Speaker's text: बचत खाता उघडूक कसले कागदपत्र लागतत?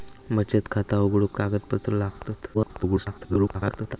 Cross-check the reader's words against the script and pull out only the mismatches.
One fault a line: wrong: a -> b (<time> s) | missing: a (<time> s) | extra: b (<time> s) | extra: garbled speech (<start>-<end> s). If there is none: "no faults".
missing: कसले (1.4 s)
extra: garbled speech (2.5-4.0 s)